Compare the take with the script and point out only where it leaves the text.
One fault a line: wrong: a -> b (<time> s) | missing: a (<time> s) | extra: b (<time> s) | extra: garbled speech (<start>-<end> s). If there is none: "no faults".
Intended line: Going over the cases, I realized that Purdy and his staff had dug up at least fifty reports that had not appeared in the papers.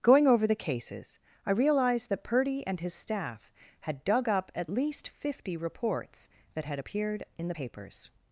missing: not (6.8 s)